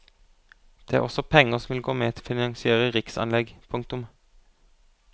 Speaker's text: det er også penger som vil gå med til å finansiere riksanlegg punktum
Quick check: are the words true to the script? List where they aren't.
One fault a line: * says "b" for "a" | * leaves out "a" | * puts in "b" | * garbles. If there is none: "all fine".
* leaves out "til"